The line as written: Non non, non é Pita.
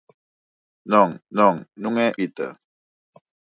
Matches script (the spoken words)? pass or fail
pass